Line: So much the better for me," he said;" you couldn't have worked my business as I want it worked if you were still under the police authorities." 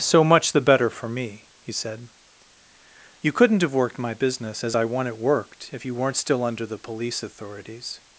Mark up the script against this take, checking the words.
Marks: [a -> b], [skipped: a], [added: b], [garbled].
So much the better for me," he said;" you couldn't have worked my business as I want it worked if you [were -> weren't] still under the police authorities."